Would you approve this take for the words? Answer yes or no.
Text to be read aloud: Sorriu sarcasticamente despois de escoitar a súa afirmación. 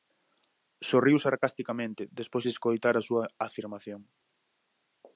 yes